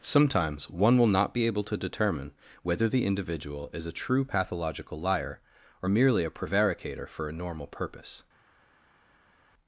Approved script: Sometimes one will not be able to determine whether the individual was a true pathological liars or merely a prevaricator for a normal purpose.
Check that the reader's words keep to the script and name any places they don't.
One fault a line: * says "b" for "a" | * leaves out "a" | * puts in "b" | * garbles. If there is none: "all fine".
* says "is" for "was"
* says "liar" for "liars"